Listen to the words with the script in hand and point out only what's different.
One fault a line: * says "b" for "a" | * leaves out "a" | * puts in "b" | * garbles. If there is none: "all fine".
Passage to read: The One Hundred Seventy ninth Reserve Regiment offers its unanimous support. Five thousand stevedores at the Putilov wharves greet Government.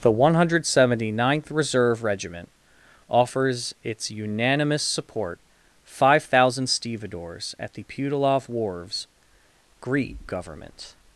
all fine